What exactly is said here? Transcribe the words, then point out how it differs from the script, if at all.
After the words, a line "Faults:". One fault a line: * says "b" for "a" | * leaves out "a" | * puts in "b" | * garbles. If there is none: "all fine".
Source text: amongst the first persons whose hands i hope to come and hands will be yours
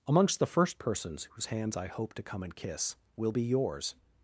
amongst the first persons whose hands i hope to come and kiss will be yours
Faults:
* says "kiss" for "hands"